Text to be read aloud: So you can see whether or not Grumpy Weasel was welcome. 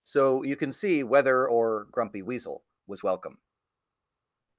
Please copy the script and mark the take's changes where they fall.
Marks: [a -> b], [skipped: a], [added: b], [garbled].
So you can see whether or [skipped: not] Grumpy Weasel was welcome.